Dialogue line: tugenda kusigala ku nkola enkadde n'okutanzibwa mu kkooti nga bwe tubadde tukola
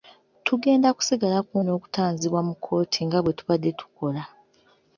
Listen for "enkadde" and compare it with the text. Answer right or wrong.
wrong